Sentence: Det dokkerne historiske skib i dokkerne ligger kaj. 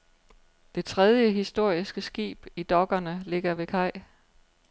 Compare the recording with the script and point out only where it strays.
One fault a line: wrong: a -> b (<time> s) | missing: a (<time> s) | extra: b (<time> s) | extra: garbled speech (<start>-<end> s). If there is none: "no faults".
wrong: dokkerne -> tredje (0.8 s)
extra: ved (3.5 s)